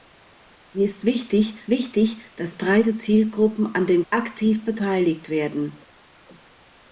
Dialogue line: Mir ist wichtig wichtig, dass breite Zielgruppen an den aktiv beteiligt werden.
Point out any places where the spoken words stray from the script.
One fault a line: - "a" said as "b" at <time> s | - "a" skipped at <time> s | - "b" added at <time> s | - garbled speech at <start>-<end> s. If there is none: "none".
none